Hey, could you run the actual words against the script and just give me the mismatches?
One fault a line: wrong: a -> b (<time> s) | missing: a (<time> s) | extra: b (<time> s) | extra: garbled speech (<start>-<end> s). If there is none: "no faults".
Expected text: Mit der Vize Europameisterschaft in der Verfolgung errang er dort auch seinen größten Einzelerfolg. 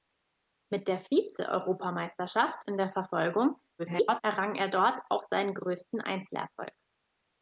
extra: garbled speech (3.8-4.2 s)